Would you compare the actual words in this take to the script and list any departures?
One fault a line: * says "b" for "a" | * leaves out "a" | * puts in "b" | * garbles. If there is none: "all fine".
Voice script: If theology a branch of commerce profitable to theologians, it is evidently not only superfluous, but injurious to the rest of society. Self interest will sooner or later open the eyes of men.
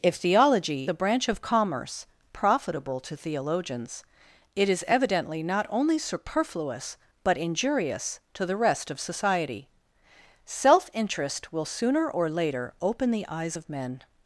all fine